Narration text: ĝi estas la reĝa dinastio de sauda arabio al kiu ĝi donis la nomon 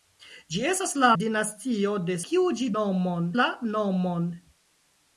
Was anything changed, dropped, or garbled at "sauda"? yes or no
yes